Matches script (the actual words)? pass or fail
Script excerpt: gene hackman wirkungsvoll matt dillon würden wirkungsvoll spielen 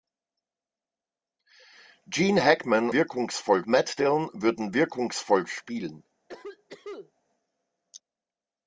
pass